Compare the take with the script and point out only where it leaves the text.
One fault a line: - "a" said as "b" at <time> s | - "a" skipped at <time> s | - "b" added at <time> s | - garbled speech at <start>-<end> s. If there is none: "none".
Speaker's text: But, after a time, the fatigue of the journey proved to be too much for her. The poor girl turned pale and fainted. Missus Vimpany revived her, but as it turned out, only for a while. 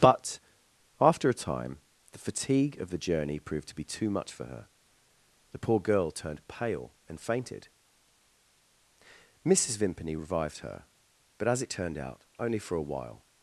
none